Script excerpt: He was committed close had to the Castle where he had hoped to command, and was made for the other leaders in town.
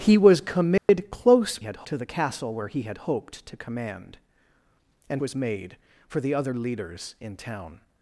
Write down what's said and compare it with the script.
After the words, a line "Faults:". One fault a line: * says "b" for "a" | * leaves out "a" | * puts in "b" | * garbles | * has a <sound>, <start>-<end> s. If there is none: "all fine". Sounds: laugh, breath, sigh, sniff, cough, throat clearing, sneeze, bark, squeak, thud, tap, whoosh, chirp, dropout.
He was committed close had to the Castle where he had hoped to command, and was made for the other leaders in town.
Faults:
* has a dropout, 0.8-0.9 s